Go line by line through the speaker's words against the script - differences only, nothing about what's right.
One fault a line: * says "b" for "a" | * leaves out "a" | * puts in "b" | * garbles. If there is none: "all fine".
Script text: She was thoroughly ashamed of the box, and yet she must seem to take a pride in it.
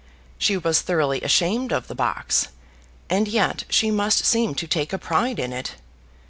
all fine